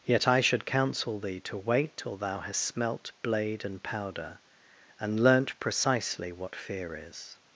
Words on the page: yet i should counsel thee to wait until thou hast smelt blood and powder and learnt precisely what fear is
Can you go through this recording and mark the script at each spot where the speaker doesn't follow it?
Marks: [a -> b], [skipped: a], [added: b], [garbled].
yet i should counsel thee to wait [until -> till] thou hast smelt [blood -> blade] and powder and learnt precisely what fear is